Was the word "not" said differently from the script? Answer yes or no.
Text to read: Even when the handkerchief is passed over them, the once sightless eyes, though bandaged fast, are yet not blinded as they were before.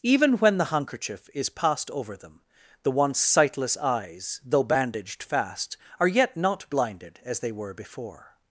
no